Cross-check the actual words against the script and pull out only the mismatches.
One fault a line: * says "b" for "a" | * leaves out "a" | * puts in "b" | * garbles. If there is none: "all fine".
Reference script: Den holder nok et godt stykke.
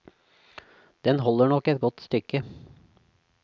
all fine